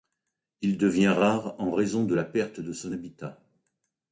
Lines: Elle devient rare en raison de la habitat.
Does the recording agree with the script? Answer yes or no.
no